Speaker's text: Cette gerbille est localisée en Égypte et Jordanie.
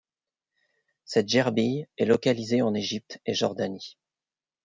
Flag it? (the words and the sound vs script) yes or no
no